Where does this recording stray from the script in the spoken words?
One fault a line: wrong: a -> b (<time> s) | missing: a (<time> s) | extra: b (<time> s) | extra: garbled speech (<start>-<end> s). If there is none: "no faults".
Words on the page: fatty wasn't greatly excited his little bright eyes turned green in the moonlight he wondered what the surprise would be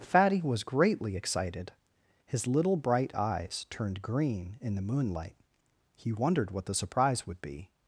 wrong: wasn't -> was (0.4 s)